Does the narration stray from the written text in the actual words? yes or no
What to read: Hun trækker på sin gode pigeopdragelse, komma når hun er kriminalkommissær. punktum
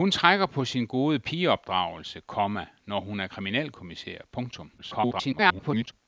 yes